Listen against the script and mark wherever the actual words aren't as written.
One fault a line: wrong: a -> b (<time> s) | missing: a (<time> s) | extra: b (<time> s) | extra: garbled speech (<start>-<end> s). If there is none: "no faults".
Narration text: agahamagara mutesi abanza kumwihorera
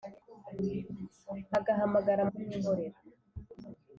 missing: mutesi abanza (2.2 s)